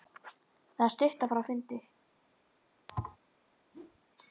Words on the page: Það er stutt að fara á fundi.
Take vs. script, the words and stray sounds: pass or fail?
fail